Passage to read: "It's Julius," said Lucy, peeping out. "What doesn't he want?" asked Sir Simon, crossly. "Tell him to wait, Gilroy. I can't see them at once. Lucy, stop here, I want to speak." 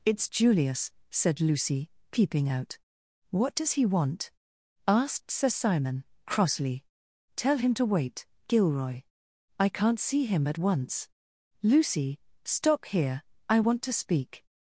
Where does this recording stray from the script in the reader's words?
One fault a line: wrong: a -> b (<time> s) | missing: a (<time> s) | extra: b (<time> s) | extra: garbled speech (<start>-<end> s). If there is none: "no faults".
wrong: doesn't -> does (3.5 s)
wrong: them -> him (10.2 s)